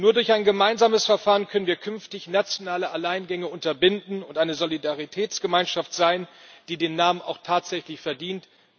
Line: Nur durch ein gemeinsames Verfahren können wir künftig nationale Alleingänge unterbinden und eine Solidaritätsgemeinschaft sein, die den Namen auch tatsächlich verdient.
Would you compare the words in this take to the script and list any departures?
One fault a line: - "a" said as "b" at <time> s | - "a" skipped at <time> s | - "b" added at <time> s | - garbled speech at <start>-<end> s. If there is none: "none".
none